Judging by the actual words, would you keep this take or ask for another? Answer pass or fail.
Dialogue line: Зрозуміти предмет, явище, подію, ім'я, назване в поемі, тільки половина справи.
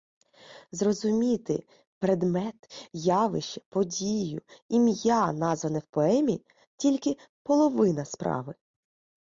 pass